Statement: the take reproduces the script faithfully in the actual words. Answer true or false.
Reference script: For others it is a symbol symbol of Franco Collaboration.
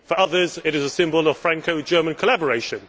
false